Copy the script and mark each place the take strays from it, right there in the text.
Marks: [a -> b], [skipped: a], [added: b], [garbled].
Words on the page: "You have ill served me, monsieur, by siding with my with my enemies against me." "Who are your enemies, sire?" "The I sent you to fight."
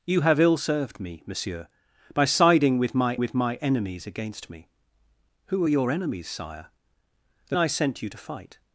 "You have ill served me, monsieur, by siding with my with my enemies against me." "Who are your enemies, sire?" "The I sent you to fight."